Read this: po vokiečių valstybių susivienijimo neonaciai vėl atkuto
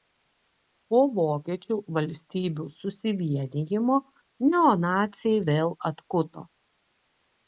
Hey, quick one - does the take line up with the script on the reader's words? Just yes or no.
yes